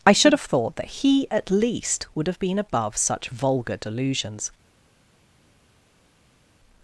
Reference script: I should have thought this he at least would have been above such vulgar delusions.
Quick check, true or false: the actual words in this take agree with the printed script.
false